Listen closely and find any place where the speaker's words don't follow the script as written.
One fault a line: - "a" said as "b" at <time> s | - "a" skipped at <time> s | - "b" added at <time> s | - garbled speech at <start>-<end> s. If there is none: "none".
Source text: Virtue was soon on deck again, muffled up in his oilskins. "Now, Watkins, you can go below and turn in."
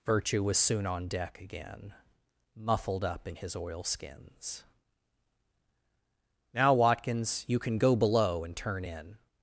none